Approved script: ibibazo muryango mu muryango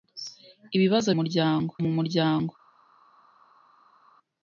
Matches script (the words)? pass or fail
pass